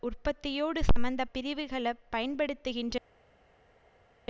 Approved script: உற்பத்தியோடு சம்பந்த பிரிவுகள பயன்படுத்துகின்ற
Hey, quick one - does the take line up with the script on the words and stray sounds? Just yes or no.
yes